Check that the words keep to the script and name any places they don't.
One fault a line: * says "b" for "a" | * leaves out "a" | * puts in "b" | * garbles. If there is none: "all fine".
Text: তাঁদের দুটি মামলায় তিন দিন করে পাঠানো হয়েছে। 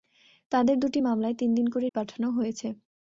all fine